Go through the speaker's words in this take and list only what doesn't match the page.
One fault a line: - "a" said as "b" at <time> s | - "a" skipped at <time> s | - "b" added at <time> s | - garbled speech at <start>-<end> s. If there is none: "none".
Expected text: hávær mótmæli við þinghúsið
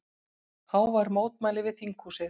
none